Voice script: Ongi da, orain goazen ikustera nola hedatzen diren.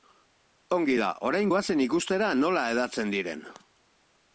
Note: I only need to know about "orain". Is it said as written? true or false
true